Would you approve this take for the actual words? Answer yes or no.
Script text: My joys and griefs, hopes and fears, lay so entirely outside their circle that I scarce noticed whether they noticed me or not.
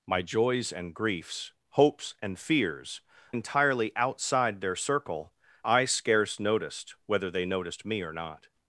no